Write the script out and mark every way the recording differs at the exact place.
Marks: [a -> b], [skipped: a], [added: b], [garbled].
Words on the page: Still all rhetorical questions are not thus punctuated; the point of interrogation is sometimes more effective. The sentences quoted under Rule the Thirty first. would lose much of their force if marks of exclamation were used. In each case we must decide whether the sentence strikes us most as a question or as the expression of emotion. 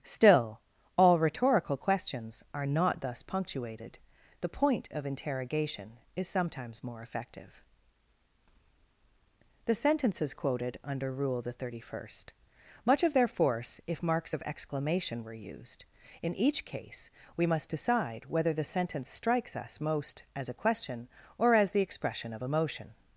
Still all rhetorical questions are not thus punctuated; the point of interrogation is sometimes more effective. The sentences quoted under Rule the Thirty first. [skipped: would lose] much of their force if marks of exclamation were used. In each case we must decide whether the sentence strikes us most as a question or as the expression of emotion.